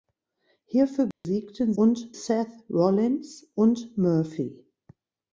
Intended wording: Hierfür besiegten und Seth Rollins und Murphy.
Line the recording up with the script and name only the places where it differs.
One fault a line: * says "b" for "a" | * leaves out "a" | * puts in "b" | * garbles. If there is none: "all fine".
all fine